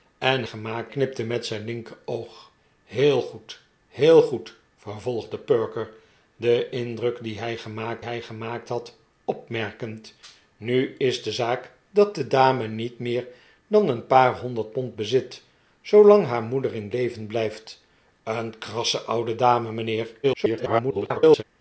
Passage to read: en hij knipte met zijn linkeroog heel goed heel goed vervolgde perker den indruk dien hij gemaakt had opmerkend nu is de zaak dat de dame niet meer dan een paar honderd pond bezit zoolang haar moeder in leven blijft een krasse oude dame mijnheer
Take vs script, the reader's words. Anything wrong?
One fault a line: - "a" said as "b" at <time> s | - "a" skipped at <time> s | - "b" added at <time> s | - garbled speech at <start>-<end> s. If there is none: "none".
- "hij" said as "gemaakt" at 0.4 s
- "hij gemaakt" added at 8.0 s
- garbled speech at 20.2-21.4 s